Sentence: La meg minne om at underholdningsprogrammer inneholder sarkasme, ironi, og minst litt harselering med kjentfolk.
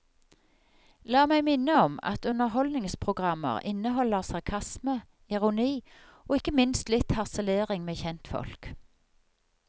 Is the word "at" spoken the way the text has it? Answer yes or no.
yes